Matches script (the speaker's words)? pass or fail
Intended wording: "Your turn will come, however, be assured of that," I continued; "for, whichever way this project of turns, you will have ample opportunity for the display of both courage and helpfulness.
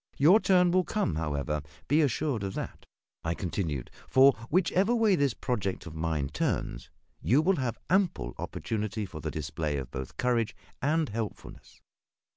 fail